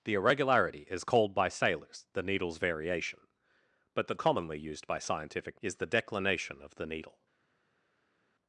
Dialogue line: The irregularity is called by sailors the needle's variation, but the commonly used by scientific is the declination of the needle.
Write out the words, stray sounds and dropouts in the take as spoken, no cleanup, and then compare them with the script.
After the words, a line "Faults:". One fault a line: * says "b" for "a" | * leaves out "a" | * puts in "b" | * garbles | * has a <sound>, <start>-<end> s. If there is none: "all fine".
The irregularity is called by sailors the needle's variation, but the commonly used by scientific is the declination of the needle.
Faults:
all fine